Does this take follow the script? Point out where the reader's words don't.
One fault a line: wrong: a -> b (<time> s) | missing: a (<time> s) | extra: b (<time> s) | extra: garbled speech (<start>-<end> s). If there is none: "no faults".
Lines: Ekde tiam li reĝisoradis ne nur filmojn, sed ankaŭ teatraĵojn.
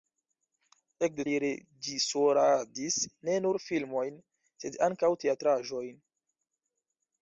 missing: tiam (1.2 s)